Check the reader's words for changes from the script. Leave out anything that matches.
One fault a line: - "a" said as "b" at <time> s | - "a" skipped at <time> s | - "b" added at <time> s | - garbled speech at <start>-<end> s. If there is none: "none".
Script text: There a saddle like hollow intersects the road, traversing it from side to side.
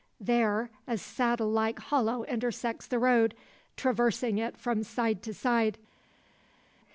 none